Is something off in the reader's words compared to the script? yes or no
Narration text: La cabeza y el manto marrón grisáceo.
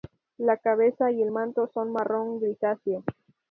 yes